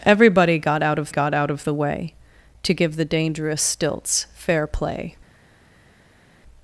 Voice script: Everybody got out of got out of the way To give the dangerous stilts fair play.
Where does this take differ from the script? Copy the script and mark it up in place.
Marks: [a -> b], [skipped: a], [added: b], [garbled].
Everybody got out of got out of the way To give the dangerous stilts fair play.